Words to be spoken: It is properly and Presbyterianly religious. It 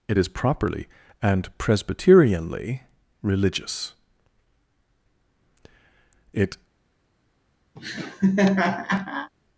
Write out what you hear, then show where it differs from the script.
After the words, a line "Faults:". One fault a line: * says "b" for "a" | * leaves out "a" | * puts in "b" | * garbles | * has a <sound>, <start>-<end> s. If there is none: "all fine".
It is properly and Presbyterianly religious. It
Faults:
* has a laugh, 7.8-9.3 s